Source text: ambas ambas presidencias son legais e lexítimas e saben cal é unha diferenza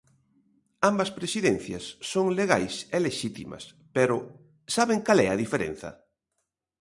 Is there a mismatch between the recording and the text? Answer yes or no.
yes